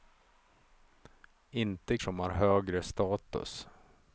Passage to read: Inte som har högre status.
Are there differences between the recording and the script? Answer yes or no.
no